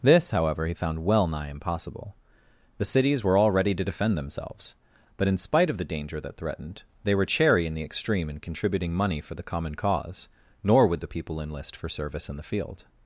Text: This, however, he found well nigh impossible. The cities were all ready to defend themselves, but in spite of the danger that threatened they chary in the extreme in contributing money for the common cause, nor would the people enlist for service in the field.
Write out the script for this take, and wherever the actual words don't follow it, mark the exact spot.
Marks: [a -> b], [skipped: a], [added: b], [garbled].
This, however, he found well nigh impossible. The cities were all ready to defend themselves, but in spite of the danger that threatened they [added: were] chary in the extreme in contributing money for the common cause, nor would the people enlist for service in the field.